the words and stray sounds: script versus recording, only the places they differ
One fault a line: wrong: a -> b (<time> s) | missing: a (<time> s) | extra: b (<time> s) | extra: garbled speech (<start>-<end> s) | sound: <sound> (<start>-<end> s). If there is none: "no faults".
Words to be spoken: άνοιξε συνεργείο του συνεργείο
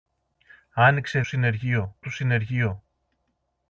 no faults